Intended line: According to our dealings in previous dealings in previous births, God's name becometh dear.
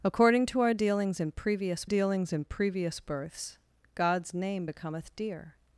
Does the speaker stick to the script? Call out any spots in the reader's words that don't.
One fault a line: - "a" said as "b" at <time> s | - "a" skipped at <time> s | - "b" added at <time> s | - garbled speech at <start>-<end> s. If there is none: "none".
none